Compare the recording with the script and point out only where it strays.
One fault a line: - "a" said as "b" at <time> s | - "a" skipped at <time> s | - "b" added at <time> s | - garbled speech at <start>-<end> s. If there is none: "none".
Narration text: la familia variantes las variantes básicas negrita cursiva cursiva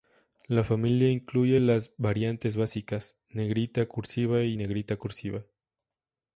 - "variantes" said as "incluye" at 1.1 s
- "y negrita" added at 4.4 s